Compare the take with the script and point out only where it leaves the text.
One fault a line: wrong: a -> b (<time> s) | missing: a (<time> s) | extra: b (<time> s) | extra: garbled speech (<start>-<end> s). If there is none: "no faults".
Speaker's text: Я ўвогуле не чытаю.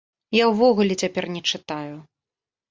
extra: цяпер (1.0 s)